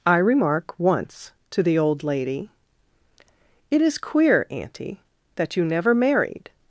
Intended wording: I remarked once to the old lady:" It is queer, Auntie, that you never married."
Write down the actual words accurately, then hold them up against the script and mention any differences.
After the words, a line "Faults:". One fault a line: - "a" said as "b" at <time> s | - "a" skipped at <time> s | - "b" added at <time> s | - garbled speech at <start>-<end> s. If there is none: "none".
I remark once to the old lady:" It is queer, Auntie, that you never married."
Faults:
- "remarked" said as "remark" at 0.2 s